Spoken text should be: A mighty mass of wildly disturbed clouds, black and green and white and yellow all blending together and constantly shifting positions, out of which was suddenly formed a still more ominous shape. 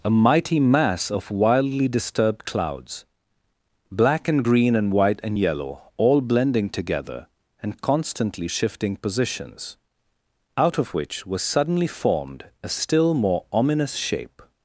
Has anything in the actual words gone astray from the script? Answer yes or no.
no